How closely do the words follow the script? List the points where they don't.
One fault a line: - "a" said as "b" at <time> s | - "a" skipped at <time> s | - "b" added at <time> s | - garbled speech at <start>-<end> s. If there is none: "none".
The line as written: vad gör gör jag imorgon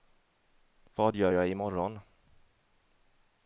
- "gör" skipped at 1.3 s